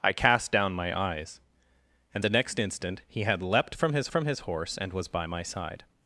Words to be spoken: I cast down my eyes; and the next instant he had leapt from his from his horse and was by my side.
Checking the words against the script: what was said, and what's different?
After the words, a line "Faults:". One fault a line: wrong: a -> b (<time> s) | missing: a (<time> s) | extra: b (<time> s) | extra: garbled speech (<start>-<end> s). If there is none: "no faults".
I cast down my eyes; and the next instant he had leapt from his from his horse and was by my side.
Faults:
no faults